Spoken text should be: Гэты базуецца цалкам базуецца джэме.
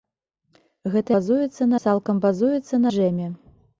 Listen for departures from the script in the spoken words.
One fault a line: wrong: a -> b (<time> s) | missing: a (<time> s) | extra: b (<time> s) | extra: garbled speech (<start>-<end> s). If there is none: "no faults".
no faults